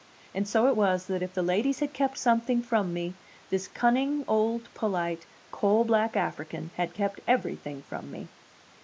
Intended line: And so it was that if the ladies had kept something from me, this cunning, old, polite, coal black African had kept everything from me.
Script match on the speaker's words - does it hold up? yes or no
yes